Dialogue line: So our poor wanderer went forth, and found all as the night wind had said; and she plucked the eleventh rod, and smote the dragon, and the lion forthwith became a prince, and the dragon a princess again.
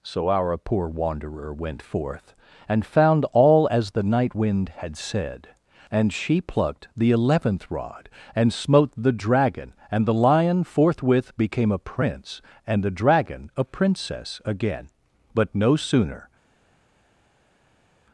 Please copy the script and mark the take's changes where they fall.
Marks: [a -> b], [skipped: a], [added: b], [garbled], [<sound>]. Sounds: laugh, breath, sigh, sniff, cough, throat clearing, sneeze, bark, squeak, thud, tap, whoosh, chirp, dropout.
So our poor wanderer went forth, and found all as the night wind had said; and she plucked the eleventh rod, and smote the dragon, and the lion forthwith became a prince, and the dragon a princess again. [added: But no sooner]